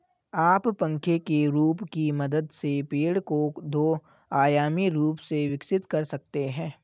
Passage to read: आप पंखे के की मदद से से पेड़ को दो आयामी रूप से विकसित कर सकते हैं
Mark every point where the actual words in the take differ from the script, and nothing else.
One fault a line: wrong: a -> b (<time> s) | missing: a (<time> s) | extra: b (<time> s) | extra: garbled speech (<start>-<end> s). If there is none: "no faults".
extra: रूप (1.5 s)
missing: से (2.8 s)